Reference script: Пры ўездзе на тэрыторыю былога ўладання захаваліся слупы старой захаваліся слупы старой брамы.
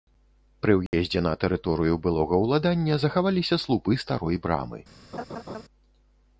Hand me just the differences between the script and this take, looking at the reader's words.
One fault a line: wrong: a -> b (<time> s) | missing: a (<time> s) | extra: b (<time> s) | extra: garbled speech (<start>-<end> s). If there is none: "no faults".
missing: захаваліся слупы старой (4.3 s)